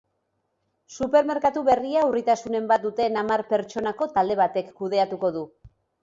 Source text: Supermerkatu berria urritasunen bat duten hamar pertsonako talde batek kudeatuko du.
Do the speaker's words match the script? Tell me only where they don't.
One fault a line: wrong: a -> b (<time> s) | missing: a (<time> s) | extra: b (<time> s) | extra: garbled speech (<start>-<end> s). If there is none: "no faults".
no faults